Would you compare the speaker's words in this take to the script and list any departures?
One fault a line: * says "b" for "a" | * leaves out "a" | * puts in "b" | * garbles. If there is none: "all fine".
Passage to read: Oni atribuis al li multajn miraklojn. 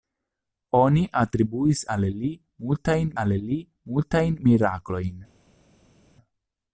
* puts in "al li multajn"